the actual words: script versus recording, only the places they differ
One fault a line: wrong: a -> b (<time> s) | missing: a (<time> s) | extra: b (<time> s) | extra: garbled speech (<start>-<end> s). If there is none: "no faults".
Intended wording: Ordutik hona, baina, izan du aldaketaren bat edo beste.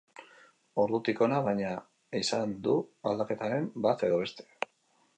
no faults